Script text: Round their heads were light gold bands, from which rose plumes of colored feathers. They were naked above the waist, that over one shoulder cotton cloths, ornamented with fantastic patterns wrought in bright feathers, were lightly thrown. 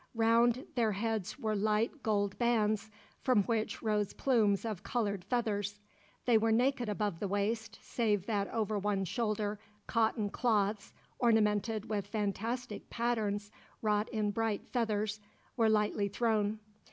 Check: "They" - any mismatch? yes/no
no